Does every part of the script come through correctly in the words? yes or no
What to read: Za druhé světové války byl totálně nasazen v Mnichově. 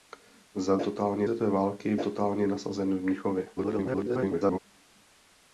no